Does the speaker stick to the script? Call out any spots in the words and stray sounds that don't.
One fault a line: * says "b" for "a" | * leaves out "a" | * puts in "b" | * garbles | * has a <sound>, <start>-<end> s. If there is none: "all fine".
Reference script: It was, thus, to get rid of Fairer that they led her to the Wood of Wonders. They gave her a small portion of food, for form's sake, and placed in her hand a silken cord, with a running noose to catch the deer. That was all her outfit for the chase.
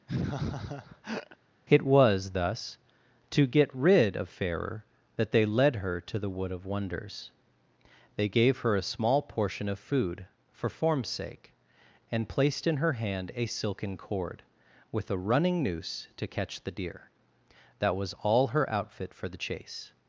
* has a laugh, 0.1-1.4 s